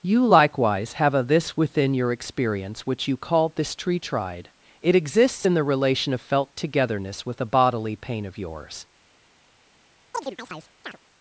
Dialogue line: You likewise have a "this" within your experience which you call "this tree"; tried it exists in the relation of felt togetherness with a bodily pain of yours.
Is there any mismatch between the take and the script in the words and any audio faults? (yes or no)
yes